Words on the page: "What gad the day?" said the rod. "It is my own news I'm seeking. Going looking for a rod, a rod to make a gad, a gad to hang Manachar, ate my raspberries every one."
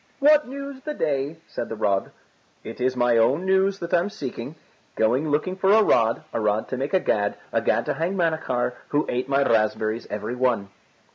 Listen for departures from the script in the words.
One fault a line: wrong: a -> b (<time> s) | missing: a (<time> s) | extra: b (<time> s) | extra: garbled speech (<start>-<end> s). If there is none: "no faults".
wrong: gad -> news (0.5 s)
extra: that (3.8 s)
extra: who (8.9 s)